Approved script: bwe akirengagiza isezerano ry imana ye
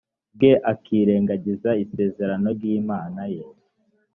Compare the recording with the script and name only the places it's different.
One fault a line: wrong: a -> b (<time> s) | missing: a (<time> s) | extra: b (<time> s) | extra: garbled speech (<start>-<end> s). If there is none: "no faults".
no faults